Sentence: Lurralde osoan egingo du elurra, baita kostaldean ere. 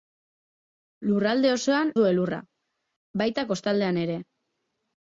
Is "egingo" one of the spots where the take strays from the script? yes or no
yes